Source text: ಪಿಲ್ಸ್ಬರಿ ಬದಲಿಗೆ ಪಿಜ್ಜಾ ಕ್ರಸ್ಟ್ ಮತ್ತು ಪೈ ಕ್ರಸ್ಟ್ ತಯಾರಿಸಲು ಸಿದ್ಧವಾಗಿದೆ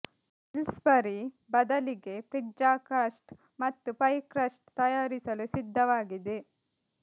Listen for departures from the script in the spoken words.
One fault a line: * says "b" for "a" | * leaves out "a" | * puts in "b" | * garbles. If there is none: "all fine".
all fine